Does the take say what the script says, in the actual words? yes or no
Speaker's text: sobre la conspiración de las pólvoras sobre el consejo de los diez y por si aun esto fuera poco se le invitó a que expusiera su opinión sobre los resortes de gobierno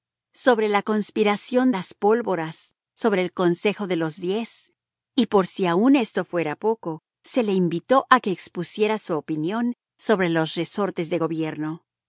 no